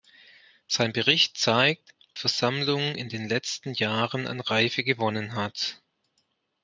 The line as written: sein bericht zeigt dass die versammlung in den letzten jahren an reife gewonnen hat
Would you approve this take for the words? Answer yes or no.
no